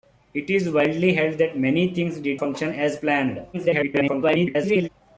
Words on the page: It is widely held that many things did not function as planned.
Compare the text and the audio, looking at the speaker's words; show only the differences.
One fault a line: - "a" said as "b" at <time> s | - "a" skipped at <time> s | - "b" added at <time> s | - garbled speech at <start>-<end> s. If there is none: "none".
- "not" skipped at 2.4 s
- garbled speech at 3.5-4.9 s